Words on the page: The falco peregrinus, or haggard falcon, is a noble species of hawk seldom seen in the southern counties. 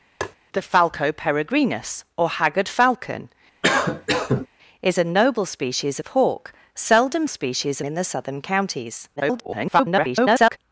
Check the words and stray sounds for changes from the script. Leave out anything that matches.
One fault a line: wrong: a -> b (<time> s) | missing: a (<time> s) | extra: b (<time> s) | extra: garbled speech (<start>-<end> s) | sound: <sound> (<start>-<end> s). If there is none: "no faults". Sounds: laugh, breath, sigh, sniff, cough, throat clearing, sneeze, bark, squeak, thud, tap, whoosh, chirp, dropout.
sound: tap (0.2-0.4 s)
sound: cough (3.6-4.5 s)
wrong: seen -> species (7.3 s)
extra: garbled speech (9.2-10.6 s)